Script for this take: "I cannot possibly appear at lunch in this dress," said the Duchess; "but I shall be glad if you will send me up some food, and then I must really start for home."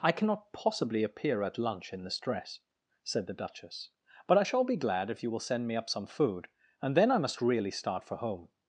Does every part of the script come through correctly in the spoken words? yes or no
yes